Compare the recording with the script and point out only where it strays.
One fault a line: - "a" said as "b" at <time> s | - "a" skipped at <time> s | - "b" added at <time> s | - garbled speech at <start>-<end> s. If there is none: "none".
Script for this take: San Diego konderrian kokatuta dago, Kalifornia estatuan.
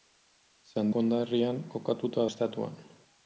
- "Diego" skipped at 0.9 s
- "dago Kalifornia" skipped at 2.3 s